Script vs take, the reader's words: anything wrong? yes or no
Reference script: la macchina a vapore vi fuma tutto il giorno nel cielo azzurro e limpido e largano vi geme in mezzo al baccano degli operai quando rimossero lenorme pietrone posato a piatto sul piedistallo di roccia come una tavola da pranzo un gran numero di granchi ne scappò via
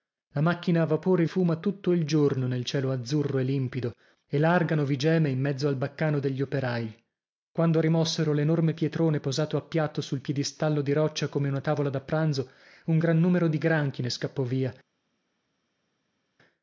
yes